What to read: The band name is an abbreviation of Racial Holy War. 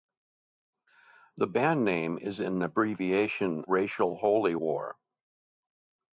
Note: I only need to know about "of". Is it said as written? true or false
false